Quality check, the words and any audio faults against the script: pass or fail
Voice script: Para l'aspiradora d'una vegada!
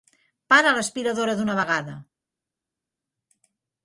pass